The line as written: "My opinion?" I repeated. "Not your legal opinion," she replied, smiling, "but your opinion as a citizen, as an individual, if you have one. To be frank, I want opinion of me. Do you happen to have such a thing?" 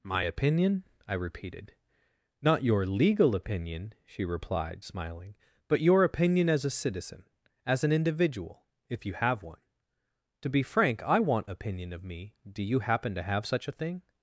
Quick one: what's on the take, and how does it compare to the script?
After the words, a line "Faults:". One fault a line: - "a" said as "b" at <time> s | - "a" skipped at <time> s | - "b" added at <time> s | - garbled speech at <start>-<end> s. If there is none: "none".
"My opinion?" I repeated. "Not your legal opinion," she replied, smiling, "but your opinion as a citizen, as an individual, if you have one. To be frank, I want opinion of me. Do you happen to have such a thing?"
Faults:
none